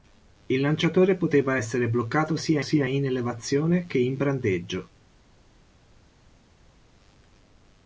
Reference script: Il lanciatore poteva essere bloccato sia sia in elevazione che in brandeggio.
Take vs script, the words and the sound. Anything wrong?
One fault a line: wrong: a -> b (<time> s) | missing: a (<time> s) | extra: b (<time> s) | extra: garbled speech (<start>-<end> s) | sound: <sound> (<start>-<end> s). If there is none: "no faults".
no faults